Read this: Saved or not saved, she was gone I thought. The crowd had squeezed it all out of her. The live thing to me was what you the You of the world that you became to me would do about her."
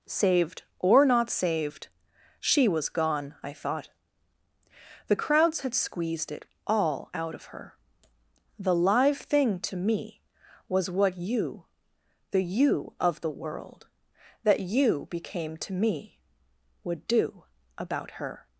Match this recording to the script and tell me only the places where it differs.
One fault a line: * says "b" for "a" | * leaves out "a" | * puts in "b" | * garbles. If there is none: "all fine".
* says "crowds" for "crowd"